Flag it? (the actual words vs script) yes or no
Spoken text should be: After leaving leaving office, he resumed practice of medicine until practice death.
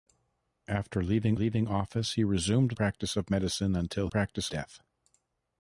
no